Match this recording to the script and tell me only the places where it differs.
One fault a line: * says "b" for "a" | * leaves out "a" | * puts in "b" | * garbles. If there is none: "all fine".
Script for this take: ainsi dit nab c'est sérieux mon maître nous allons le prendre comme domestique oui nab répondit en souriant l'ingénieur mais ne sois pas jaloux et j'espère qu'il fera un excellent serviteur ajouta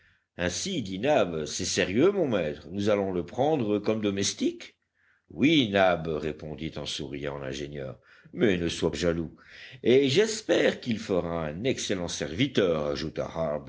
* leaves out "pas"